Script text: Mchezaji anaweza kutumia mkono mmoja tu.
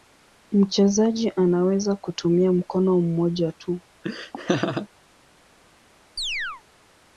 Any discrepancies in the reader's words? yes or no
no